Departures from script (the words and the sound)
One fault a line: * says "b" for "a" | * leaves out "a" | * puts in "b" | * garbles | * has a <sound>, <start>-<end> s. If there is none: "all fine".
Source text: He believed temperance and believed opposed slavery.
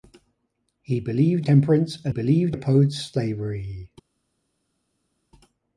all fine